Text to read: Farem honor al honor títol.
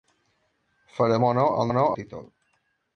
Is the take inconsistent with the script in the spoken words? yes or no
no